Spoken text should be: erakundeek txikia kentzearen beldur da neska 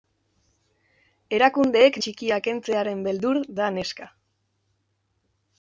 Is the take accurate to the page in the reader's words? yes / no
yes